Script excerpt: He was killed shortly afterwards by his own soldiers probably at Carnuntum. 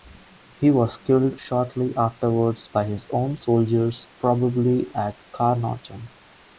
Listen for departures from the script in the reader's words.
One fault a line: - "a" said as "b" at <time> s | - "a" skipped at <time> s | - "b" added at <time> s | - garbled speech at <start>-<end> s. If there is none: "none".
none